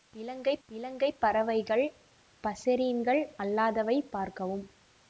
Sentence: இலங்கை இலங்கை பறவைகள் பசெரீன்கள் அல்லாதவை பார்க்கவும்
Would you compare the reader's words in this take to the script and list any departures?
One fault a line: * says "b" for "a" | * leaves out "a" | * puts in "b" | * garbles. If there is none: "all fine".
all fine